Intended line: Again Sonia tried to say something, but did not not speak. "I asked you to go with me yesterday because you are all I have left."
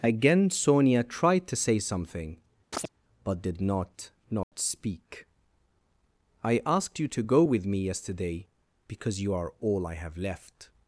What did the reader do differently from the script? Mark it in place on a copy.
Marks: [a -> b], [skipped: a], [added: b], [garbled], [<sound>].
Again Sonia tried to say something, [chirp] but did not not [dropout] speak. "I asked you to go with me yesterday because you are all I have left."